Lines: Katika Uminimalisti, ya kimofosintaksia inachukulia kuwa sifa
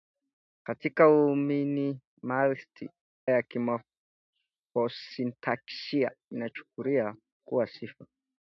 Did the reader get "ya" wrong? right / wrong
right